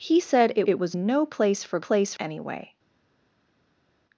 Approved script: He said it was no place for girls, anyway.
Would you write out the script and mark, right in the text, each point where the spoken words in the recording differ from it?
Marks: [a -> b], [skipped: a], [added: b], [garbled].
He said it [added: it] was no place for [girls, -> place] anyway.